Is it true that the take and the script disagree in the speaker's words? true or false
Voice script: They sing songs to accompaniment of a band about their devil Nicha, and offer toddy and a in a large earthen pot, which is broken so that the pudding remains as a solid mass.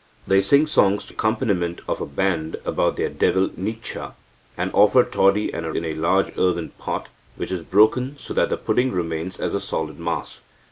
false